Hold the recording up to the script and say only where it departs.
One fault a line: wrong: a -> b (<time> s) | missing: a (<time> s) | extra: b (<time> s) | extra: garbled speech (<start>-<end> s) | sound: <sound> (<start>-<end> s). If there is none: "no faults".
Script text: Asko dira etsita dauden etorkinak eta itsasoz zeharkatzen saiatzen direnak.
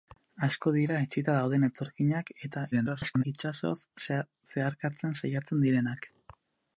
extra: garbled speech (2.7-3.2 s)